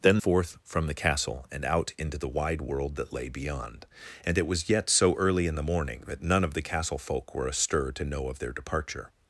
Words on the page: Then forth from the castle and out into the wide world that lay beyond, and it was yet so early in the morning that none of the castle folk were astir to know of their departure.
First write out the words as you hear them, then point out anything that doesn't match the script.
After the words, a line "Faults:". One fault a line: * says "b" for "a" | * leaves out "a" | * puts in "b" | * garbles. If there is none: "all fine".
Then forth from the castle and out into the wide world that lay beyond, and it was yet so early in the morning that none of the castle folk were astir to know of their departure.
Faults:
all fine